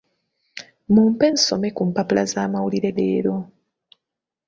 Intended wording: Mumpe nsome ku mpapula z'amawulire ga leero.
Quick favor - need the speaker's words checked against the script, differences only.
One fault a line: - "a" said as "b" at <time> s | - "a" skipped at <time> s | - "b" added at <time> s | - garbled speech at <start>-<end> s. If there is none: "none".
- "ga" skipped at 2.9 s